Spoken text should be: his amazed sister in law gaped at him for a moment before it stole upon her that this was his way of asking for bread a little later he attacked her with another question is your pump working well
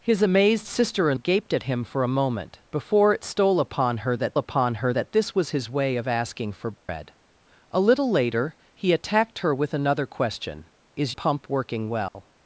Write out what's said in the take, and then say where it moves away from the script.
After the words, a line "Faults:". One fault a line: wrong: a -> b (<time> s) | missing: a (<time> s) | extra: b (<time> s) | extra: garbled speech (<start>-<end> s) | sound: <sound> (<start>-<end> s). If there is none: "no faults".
his amazed sister in gaped at him for a moment before it stole upon her that upon her that this was his way of asking for bread a little later he attacked her with another question is pump working well
Faults:
missing: law (1.2 s)
extra: upon her that (4.3 s)
sound: dropout (6.8-6.9 s)
missing: your (11.2 s)
sound: dropout (12.1-12.2 s)